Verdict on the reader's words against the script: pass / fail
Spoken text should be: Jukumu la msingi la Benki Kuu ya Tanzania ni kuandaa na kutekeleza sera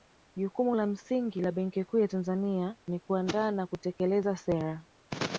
pass